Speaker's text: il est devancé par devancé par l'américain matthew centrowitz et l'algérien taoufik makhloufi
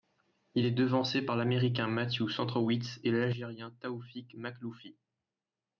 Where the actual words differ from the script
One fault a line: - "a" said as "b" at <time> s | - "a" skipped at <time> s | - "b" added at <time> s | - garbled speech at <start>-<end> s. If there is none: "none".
- "devancé par" skipped at 1.4 s